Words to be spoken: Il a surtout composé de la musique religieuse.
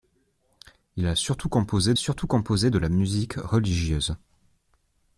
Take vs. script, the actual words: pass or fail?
fail